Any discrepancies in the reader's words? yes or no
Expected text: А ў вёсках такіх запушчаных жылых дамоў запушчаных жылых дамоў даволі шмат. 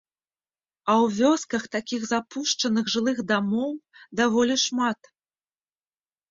yes